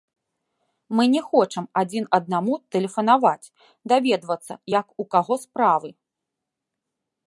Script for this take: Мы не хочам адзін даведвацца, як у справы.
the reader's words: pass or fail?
fail